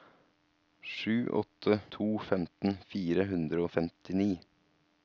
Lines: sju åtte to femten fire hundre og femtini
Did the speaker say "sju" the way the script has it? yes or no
yes